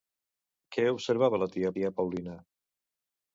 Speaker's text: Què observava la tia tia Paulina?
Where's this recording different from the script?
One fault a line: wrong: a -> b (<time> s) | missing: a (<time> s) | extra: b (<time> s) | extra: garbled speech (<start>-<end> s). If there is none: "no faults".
no faults